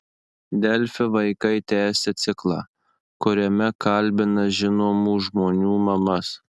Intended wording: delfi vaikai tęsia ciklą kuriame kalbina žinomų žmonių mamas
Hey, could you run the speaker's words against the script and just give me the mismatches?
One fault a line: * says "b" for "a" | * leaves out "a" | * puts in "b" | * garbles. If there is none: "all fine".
all fine